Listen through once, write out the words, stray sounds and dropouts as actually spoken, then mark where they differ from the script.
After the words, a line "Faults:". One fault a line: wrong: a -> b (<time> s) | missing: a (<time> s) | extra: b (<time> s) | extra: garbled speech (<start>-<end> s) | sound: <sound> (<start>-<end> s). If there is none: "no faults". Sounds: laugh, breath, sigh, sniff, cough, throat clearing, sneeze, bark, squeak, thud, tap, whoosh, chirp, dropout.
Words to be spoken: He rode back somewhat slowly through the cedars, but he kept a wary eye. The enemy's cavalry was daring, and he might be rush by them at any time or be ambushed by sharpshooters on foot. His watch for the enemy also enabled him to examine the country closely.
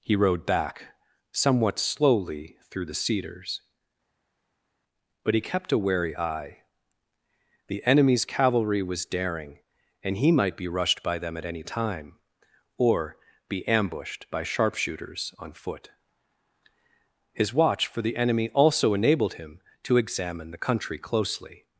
He rode back somewhat slowly through the cedars, but he kept a wary eye. The enemy's cavalry was daring, and he might be rushed by them at any time or be ambushed by sharpshooters on foot. His watch for the enemy also enabled him to examine the country closely.
Faults:
wrong: rush -> rushed (10.7 s)